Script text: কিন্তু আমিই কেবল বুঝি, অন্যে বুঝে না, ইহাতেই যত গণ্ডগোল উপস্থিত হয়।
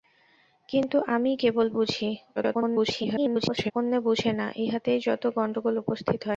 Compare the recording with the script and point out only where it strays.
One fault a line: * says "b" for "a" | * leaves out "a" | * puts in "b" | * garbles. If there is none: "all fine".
* garbles